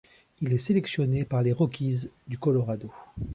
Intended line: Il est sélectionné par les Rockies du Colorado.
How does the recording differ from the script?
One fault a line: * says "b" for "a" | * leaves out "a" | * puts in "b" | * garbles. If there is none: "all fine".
all fine